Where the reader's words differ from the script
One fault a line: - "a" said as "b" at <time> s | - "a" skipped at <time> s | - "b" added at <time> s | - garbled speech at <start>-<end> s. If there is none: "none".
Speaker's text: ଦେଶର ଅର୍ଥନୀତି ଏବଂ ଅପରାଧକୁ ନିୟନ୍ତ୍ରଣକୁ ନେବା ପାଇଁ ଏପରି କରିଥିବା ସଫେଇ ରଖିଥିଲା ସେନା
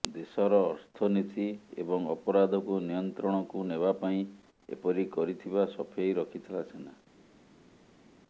none